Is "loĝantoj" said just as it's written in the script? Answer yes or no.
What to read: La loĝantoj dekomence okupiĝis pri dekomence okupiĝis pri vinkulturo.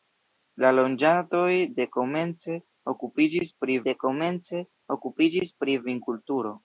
yes